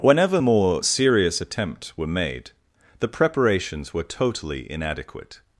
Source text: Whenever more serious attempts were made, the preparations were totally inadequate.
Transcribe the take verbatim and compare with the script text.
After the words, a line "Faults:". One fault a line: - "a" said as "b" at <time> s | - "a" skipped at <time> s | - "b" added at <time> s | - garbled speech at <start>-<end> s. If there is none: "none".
Whenever more serious attempts were made, the preparations were totally inadequate.
Faults:
none